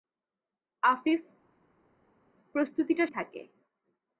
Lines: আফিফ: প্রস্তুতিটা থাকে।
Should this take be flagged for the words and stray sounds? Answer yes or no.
no